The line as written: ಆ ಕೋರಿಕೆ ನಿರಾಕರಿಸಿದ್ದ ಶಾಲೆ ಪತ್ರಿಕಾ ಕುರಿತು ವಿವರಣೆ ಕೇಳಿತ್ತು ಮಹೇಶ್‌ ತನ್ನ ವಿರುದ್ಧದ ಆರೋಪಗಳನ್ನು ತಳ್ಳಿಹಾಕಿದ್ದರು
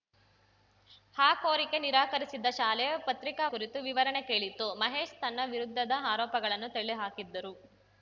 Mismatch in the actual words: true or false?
false